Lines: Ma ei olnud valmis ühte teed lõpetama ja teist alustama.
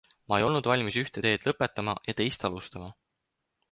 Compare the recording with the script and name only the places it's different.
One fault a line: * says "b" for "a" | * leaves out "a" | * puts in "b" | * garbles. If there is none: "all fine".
all fine